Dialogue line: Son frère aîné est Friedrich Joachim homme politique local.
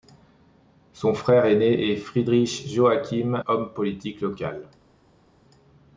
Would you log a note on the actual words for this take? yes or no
no